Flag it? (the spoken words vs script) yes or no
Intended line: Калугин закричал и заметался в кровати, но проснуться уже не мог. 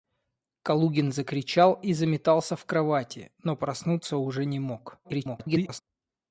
yes